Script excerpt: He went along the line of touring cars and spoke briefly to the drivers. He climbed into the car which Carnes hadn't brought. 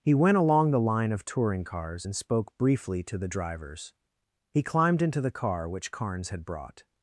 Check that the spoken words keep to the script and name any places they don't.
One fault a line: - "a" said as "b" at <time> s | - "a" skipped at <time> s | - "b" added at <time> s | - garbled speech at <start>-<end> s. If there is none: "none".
- "hadn't" said as "had" at 6.3 s